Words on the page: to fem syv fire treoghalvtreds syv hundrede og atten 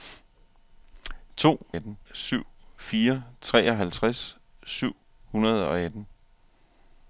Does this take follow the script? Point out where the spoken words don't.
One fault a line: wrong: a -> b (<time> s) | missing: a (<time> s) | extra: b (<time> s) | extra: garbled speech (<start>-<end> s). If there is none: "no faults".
wrong: fem -> atten (1.7 s)